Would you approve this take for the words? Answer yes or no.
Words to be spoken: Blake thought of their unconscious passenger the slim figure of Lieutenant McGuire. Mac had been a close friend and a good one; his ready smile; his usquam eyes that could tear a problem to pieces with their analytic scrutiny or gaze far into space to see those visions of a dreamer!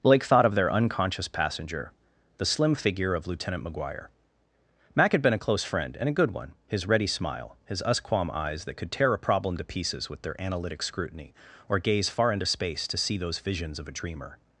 yes